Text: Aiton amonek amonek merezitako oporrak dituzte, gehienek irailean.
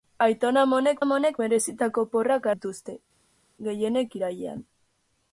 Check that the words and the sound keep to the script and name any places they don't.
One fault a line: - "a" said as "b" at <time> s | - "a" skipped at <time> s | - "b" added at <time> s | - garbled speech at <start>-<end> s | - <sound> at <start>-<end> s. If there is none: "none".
none